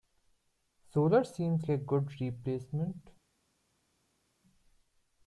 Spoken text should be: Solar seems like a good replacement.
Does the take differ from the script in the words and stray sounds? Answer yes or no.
yes